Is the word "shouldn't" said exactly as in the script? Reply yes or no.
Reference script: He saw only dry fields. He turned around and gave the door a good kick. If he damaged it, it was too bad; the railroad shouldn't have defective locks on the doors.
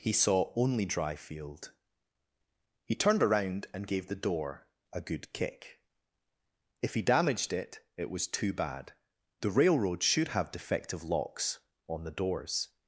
no